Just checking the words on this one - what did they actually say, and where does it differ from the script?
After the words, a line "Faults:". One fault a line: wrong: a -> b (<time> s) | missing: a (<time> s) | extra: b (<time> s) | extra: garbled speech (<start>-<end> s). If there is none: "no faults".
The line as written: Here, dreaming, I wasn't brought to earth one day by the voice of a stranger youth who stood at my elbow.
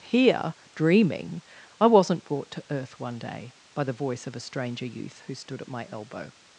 Here, dreaming, I wasn't brought to earth one day by the voice of a stranger youth who stood at my elbow.
Faults:
no faults